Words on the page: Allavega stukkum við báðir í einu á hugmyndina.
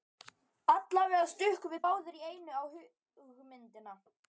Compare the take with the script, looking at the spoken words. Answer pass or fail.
pass